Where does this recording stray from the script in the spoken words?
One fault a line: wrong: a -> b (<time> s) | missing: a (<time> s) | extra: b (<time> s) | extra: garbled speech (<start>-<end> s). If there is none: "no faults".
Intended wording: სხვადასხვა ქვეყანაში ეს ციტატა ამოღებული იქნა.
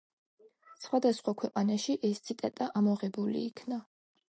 no faults